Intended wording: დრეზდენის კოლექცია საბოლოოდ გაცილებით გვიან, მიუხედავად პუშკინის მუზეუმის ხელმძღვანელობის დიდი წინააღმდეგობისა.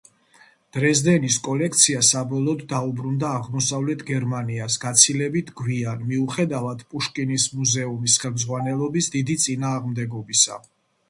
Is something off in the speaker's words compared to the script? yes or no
yes